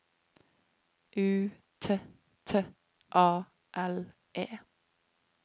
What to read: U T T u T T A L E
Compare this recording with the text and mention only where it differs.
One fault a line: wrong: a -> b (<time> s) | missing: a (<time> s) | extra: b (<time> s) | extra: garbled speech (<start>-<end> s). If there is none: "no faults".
missing: u T T (2.6 s)